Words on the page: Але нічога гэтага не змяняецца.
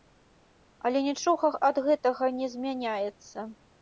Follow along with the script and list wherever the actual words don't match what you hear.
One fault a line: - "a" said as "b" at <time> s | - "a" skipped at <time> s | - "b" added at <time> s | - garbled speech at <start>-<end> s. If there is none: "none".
- "ад" added at 1.7 s